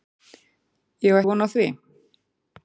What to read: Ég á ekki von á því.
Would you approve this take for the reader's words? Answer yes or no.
no